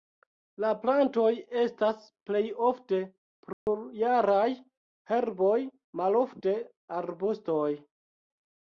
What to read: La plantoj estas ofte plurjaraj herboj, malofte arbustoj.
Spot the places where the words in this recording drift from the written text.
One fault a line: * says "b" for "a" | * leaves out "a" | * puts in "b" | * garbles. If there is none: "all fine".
* puts in "plej"